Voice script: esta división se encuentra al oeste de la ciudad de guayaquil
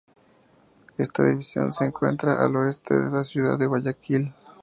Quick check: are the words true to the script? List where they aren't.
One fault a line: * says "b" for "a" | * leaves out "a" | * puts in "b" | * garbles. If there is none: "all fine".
all fine